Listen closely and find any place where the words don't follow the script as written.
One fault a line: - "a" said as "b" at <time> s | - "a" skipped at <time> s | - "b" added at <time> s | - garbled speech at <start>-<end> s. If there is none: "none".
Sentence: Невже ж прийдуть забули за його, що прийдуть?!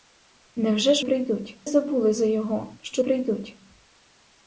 none